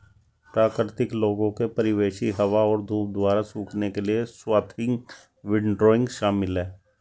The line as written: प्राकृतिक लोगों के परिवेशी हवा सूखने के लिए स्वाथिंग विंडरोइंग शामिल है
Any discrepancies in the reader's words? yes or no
yes